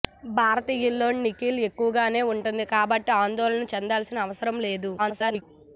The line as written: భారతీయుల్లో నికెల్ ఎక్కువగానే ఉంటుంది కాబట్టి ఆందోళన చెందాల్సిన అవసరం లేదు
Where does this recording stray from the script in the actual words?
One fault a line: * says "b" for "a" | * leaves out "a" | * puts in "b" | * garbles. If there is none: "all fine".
* garbles